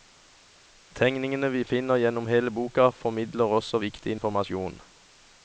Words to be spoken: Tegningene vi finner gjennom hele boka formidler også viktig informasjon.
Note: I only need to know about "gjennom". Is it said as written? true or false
true